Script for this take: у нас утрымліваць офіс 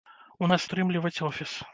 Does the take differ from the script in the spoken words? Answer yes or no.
no